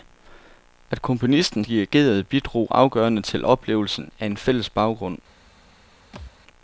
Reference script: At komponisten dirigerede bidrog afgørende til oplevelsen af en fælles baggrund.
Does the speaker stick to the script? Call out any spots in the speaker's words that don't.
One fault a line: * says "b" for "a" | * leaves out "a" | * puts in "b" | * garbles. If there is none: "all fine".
all fine